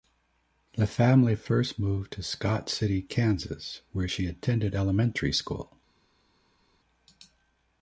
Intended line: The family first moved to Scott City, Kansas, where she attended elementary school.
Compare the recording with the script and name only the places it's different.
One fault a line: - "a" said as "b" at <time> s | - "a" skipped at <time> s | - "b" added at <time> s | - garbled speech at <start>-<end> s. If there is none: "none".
none